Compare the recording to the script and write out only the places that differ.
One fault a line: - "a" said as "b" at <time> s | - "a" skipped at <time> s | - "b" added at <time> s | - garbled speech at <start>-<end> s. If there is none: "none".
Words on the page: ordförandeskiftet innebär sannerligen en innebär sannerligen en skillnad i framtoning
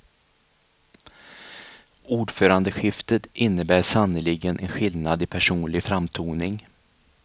- "innebär sannerligen en" skipped at 4.7 s
- "personlig" added at 5.2 s